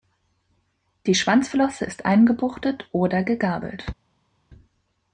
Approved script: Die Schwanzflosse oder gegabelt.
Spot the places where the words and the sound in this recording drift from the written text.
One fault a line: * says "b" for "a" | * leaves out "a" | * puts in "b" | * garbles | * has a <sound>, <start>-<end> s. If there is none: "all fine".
* puts in "ist eingebuchtet"